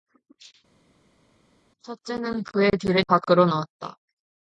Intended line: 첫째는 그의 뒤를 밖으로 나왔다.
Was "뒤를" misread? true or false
false